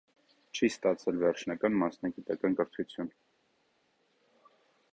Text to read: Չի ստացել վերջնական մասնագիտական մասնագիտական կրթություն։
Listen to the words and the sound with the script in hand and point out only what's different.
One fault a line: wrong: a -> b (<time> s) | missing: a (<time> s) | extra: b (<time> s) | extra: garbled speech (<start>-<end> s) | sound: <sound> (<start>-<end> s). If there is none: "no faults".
missing: մասնագիտական (2.6 s)